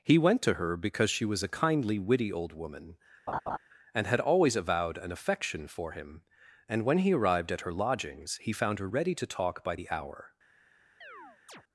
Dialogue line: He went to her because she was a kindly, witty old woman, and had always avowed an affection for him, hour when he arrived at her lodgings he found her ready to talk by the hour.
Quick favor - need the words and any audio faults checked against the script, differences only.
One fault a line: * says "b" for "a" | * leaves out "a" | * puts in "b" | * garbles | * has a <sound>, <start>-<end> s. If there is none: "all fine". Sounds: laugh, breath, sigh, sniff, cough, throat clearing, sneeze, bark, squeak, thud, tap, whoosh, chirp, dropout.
* has a laugh, 3.3-3.6 s
* says "and" for "hour"
* has a chirp, 11.0-11.6 s